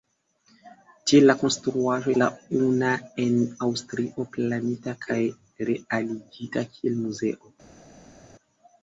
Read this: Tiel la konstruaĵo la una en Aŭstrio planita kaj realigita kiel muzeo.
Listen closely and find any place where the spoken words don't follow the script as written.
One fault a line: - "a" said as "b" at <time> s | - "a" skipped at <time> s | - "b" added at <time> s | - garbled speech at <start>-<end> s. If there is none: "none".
none